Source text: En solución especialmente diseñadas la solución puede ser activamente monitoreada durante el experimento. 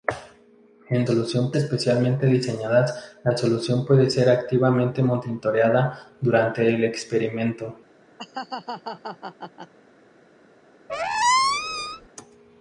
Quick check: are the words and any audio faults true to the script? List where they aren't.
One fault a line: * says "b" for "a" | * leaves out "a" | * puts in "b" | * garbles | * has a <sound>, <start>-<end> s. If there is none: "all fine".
* has a laugh, 8.2-9.7 s
* has a squeak, 10.9-12.1 s